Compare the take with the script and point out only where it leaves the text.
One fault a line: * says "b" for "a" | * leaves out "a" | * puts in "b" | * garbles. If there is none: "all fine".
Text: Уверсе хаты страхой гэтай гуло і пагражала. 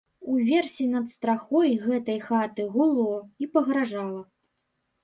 * says "над" for "хаты"
* puts in "хаты"